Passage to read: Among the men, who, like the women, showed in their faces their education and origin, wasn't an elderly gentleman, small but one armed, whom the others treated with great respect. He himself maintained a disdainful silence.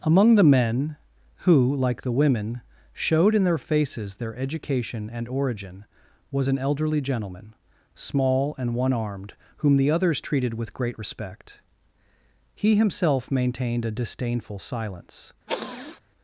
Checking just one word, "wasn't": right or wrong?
wrong